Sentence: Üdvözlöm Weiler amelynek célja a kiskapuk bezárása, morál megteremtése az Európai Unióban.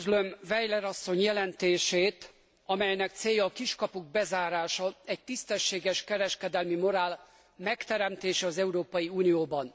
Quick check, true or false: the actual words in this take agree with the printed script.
false